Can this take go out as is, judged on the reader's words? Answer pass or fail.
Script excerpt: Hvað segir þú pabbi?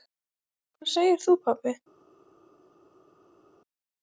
pass